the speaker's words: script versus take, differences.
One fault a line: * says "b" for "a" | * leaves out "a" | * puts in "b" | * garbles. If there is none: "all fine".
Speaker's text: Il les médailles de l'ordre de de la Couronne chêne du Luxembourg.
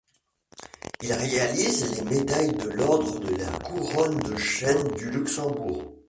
* puts in "réalise"
* leaves out "de"
* puts in "de"